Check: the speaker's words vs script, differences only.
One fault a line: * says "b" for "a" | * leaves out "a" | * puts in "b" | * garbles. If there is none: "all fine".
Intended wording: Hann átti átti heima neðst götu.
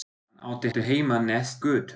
all fine